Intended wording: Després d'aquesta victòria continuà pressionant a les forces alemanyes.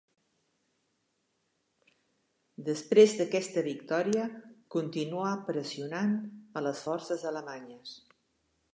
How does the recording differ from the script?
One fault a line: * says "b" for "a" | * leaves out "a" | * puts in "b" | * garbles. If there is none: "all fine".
all fine